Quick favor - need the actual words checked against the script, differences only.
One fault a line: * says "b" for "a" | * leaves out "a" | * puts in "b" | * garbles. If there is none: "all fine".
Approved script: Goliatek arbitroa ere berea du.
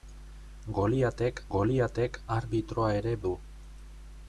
* puts in "goliatek"
* leaves out "berea"